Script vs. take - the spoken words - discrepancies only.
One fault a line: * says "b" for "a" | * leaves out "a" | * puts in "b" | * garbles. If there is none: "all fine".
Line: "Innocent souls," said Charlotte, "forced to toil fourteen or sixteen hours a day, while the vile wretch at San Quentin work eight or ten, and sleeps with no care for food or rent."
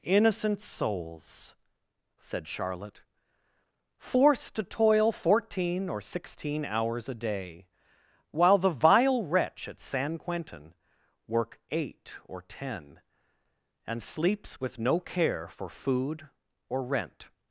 all fine